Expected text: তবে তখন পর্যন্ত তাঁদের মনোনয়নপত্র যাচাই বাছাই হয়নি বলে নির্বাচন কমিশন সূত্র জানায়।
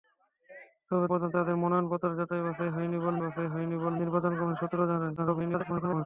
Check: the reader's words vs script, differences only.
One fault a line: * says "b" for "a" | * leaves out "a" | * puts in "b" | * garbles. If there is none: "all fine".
* leaves out "তখন"
* puts in "বাছাই হয়নি বলে"
* garbles